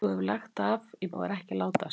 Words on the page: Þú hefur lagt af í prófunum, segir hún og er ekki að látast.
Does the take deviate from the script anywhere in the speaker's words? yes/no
yes